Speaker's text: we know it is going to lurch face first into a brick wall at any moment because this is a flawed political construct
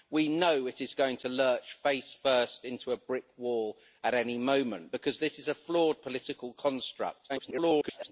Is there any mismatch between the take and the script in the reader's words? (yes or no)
yes